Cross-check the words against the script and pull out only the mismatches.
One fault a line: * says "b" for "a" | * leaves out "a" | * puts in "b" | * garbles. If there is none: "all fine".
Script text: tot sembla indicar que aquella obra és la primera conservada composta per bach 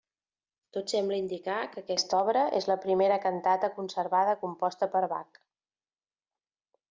* says "aquesta" for "aquella"
* puts in "cantata"